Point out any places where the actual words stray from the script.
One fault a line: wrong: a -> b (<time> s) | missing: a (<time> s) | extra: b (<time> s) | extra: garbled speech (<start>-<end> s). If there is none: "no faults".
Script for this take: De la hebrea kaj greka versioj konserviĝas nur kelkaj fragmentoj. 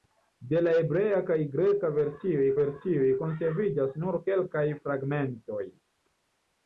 extra: versioj (2.6 s)